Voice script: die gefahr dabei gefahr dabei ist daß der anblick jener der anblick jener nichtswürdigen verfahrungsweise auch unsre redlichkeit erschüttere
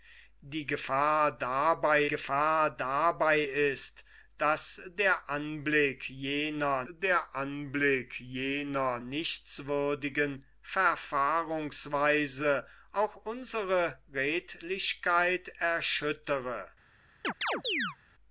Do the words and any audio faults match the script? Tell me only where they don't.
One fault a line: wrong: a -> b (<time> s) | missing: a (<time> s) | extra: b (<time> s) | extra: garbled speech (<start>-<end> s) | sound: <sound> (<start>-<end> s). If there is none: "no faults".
sound: chirp (17.2-18.0 s)